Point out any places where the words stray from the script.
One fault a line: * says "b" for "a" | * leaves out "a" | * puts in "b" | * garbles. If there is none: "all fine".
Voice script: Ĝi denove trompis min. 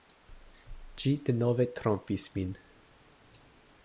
all fine